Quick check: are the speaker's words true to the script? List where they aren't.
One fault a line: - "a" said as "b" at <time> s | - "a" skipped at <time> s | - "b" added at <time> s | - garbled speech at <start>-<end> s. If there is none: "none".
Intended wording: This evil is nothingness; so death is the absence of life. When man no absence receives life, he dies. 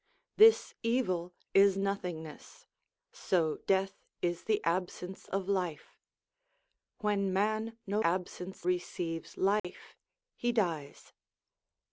none